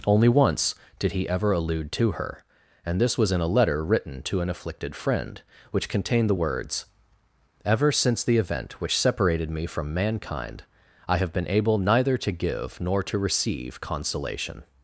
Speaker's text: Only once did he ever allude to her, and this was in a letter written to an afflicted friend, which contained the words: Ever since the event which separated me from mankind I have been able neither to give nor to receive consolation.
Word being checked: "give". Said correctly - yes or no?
yes